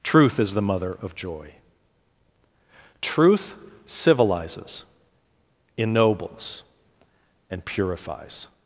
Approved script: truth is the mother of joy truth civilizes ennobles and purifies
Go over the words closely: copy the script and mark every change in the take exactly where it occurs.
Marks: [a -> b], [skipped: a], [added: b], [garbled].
truth is the mother of joy truth civilizes ennobles and purifies